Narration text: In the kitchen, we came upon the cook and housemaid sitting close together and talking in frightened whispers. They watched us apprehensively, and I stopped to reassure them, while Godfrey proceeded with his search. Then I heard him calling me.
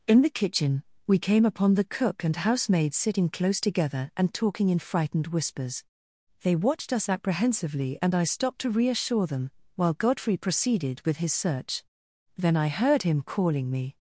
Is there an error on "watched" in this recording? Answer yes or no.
no